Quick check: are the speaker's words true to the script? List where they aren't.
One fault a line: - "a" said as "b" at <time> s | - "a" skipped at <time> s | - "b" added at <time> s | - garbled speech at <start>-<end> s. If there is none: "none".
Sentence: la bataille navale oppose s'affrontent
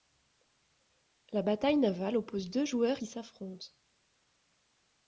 - "deux joueurs qui" added at 2.5 s